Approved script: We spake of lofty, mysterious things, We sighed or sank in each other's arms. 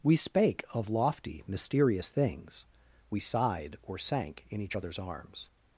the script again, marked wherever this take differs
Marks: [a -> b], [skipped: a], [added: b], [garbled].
We spake of lofty, mysterious things, We sighed or sank in each other's arms.